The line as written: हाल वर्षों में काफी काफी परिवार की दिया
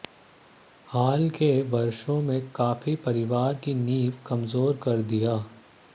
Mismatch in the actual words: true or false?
true